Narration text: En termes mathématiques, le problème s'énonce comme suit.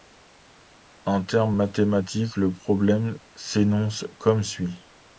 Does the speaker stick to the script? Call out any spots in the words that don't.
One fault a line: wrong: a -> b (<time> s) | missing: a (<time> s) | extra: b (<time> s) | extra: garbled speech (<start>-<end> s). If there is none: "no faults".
no faults